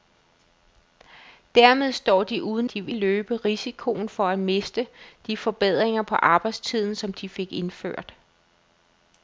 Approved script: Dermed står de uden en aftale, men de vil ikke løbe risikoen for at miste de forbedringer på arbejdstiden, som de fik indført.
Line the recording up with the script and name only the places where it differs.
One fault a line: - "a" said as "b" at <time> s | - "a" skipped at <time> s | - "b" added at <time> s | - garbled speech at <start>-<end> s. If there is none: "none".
- "en aftale men" skipped at 2.7 s
- "ikke" skipped at 2.9 s